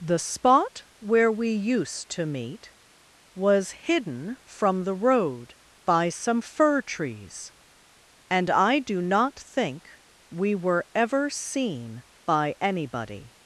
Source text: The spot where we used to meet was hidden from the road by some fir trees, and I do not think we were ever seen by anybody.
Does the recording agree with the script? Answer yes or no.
yes